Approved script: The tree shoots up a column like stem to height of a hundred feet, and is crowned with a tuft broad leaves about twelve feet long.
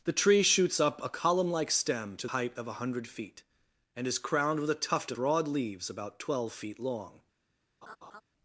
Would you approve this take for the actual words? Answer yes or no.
yes